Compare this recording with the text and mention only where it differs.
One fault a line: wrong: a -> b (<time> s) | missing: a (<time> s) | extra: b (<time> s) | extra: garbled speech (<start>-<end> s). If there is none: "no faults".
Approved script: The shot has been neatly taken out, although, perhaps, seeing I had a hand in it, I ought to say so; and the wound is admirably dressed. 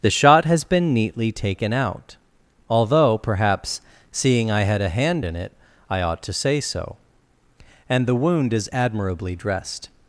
no faults